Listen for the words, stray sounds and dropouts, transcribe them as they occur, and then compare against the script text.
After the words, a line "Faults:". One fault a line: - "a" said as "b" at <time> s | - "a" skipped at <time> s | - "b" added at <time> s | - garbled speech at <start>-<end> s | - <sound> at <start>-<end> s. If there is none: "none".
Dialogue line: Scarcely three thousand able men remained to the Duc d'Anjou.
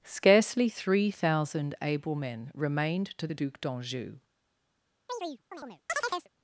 Scarcely three thousand able men remained to the Duc d'Anjou.
Faults:
- chirp at 5.1-6.3 s